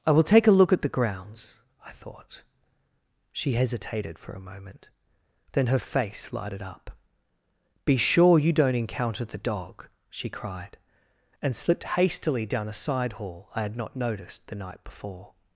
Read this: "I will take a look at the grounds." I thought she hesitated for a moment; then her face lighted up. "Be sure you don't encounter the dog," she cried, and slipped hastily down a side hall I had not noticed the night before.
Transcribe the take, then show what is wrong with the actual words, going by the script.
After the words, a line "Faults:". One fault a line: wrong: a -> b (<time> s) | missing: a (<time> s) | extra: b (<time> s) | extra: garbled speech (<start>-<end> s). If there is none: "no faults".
"I will take a look at the grounds." I thought she hesitated for a moment; then her face lighted up. "Be sure you don't encounter the dog," she cried, and slipped hastily down a side hall I had not noticed the night before.
Faults:
no faults